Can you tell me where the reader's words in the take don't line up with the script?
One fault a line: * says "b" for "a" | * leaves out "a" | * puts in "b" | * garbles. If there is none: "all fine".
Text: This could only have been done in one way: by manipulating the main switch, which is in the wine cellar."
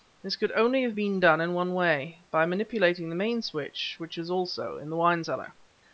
* puts in "also"